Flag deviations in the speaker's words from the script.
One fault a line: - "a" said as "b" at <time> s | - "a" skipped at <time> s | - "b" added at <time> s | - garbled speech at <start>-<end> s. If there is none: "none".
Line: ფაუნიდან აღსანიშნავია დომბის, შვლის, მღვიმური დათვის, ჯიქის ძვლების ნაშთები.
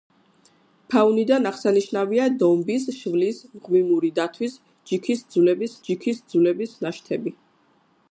- "ჯიქის ძვლების" added at 5.9 s